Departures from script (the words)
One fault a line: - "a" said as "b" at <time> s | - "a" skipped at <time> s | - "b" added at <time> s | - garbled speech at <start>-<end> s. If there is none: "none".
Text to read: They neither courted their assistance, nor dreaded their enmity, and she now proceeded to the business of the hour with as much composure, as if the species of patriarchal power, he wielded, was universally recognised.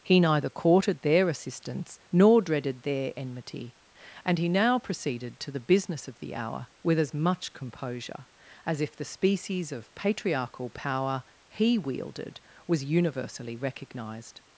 - "They" said as "He" at 0.0 s
- "she" said as "he" at 4.4 s